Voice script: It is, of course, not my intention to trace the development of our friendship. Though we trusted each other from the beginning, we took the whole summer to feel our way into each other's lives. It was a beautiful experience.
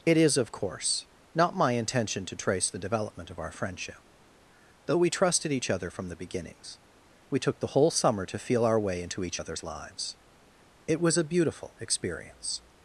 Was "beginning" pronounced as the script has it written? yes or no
no